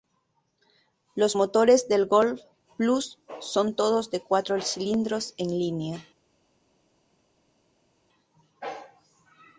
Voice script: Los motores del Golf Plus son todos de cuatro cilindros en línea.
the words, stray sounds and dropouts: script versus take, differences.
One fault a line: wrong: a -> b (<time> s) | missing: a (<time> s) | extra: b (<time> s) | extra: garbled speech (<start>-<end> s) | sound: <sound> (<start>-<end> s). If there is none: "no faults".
no faults